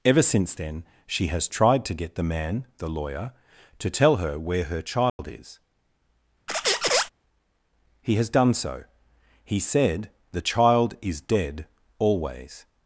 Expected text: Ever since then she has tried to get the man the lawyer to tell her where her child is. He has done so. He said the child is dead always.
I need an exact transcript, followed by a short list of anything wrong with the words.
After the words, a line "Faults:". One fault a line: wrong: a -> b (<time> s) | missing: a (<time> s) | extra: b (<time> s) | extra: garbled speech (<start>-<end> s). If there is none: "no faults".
Ever since then she has tried to get the man the lawyer to tell her where her child is. He has done so. He said the child is dead always.
Faults:
no faults